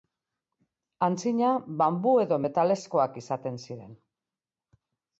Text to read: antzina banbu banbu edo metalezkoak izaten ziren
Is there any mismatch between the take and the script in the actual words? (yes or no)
yes